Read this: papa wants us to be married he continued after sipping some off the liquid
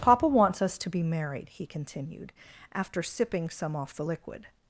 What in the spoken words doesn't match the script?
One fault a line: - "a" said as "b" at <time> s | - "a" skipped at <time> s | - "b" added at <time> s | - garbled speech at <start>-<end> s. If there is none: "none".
none